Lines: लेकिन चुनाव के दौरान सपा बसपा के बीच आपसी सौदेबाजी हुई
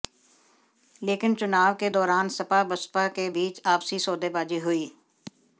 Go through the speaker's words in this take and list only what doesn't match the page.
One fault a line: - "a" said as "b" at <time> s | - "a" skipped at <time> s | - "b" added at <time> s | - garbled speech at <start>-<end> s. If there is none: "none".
none